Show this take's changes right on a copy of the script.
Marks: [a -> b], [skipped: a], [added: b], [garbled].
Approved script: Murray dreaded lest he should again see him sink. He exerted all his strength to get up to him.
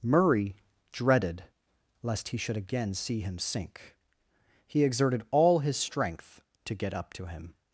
Murray dreaded lest he should again see him sink. He exerted all his strength to get up to him.